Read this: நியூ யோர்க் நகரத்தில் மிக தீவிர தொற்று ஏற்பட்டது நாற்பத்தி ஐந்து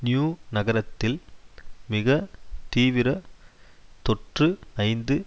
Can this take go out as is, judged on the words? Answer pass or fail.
fail